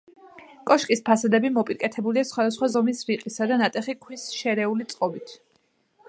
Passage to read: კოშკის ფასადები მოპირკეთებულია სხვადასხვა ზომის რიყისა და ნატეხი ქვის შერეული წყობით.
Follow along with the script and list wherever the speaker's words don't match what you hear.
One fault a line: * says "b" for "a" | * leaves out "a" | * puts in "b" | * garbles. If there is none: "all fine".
all fine